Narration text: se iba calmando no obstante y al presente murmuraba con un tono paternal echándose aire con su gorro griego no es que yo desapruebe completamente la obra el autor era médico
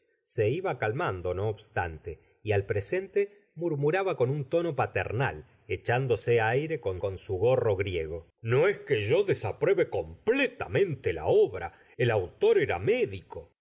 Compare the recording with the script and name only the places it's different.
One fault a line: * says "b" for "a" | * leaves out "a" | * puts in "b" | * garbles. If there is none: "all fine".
* puts in "con"